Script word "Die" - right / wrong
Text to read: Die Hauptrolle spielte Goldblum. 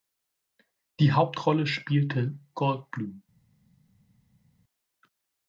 right